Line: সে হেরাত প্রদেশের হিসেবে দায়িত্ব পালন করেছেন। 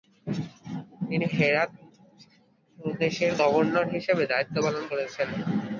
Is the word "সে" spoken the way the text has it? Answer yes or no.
no